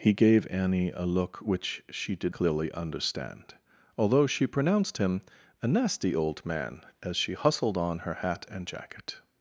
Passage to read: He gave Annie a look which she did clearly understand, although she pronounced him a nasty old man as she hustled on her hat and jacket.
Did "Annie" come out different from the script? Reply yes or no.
no